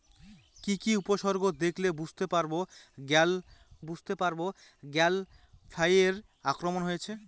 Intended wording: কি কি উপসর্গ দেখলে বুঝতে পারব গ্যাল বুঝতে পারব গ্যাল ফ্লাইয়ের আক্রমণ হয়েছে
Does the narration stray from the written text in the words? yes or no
no